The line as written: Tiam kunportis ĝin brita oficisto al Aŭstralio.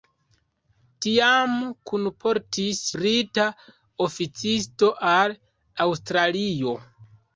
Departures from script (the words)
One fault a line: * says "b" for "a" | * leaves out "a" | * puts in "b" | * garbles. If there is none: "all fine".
* leaves out "ĝin"